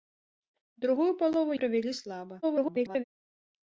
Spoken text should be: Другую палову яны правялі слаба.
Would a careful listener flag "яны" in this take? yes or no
yes